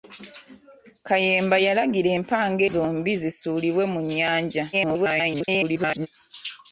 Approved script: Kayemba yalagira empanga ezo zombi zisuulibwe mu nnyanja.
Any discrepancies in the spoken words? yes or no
yes